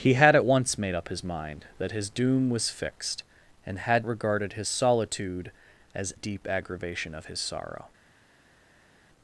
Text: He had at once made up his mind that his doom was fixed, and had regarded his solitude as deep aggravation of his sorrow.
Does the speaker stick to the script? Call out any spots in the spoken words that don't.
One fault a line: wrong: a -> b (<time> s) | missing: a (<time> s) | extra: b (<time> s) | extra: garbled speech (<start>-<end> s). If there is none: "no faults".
no faults